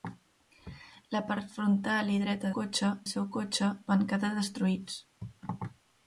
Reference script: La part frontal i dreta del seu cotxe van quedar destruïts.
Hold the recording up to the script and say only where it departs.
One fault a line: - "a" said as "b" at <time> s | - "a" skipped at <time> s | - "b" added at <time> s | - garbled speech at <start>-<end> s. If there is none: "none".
- "del" said as "cotxe" at 2.6 s